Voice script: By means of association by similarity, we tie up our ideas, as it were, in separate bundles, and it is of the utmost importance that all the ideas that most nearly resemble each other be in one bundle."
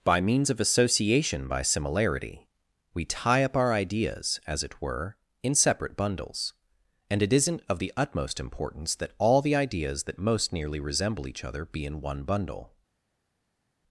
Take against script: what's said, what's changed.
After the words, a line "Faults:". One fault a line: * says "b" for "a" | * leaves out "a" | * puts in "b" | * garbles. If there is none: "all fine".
By means of association by similarity, we tie up our ideas, as it were, in separate bundles, and it isn't of the utmost importance that all the ideas that most nearly resemble each other be in one bundle."
Faults:
* says "isn't" for "is"